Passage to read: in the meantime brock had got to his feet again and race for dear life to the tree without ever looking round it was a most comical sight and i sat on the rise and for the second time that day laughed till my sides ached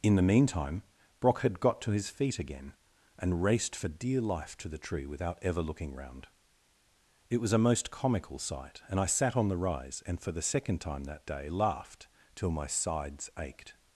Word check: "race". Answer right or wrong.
wrong